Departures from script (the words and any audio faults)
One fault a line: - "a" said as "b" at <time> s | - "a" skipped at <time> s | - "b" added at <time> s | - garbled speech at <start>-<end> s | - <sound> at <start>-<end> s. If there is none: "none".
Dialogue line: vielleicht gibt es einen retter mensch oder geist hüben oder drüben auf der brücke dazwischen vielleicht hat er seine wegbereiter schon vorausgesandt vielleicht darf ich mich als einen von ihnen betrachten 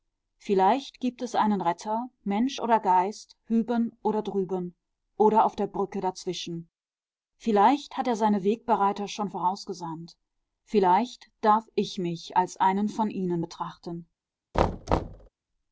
- "oder" added at 5.2 s
- thud at 14.5-15.3 s